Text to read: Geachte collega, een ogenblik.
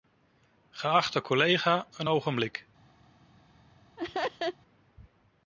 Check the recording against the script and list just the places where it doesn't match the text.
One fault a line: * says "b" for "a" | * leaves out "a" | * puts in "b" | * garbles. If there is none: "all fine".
all fine